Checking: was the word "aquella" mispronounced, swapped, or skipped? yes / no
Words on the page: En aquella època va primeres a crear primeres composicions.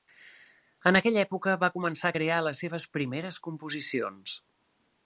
no